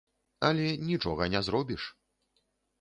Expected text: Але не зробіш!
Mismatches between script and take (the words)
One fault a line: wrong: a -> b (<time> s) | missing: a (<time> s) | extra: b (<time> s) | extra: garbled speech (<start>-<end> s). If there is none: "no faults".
extra: нічога (0.9 s)